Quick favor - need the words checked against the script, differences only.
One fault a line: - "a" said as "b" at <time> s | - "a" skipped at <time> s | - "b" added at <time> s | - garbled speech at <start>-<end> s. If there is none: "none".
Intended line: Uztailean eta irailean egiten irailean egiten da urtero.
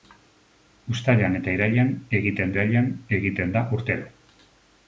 none